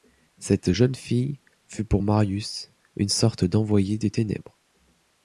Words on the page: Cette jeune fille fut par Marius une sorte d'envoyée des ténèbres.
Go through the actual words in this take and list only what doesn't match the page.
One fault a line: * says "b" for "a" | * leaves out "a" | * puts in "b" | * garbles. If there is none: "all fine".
* says "pour" for "par"